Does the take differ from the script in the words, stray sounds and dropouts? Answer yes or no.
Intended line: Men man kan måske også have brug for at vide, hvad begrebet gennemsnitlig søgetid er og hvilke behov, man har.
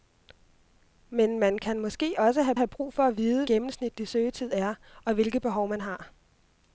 yes